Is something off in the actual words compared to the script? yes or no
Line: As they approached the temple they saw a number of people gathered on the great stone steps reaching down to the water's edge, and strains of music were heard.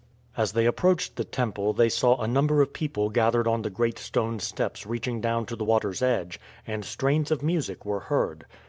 no